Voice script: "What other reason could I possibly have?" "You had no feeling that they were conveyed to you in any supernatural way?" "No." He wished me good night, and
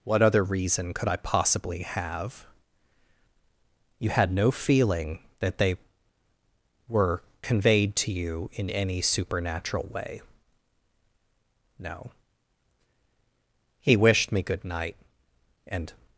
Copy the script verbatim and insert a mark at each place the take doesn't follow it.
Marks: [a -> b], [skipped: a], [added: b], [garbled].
"What other reason could I possibly have?" "You had no feeling that they were conveyed to you in any supernatural way?" "No." He wished me good night, and